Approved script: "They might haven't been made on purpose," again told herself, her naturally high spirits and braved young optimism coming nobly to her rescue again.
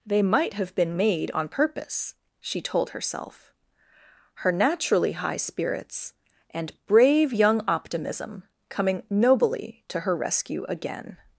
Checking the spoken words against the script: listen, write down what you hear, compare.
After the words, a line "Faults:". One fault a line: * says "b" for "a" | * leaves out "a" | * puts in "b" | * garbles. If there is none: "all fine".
"They might have been made on purpose," she told herself, her naturally high spirits and brave young optimism coming nobly to her rescue again.
Faults:
* says "have" for "haven't"
* says "she" for "again"
* says "brave" for "braved"